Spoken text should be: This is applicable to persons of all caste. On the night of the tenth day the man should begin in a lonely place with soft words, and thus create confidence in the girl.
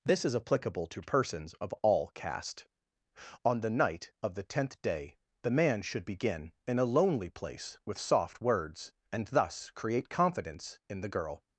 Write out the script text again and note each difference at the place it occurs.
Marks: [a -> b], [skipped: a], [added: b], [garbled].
This is applicable to persons of all caste. On the night of the tenth day the man should begin in a lonely place with soft words, and thus create confidence in the girl.